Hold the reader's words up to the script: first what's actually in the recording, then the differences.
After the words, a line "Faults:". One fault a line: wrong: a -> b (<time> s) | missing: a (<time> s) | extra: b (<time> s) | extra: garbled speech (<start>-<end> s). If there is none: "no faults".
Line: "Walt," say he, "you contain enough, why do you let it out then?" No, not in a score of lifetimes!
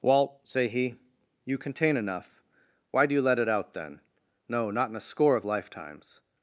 "Walt," say he, "you contain enough, why do you let it out then?" No, not in a score of lifetimes!
Faults:
no faults